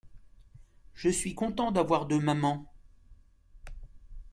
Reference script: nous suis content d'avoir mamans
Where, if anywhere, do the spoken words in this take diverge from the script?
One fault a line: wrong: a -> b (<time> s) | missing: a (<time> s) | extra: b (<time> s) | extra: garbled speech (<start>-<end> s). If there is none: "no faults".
wrong: nous -> je (0.9 s)
extra: deux (2.1 s)